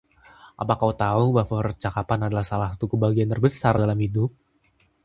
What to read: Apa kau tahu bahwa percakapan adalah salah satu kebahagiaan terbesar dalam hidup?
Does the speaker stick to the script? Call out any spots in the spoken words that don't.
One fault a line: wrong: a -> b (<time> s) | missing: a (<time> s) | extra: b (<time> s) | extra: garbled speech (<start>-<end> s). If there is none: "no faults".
no faults